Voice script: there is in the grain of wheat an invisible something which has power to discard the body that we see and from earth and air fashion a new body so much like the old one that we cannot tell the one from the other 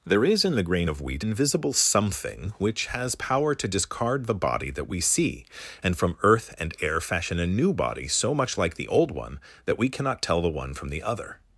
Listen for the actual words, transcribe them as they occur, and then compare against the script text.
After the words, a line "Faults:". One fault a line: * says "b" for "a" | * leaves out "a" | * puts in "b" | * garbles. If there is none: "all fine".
there is in the grain of wheat invisible something which has power to discard the body that we see and from earth and air fashion a new body so much like the old one that we cannot tell the one from the other
Faults:
* leaves out "an"